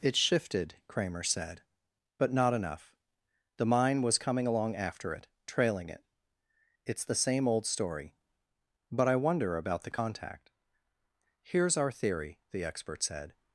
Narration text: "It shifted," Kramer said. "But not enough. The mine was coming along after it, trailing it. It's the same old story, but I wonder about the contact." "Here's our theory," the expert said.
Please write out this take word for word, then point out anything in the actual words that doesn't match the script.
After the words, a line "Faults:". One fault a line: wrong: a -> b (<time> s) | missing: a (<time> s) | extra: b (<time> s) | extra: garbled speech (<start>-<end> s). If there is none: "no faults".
"It shifted," Kramer said. "But not enough. The mine was coming along after it, trailing it. It's the same old story, but I wonder about the contact." "Here's our theory," the expert said.
Faults:
no faults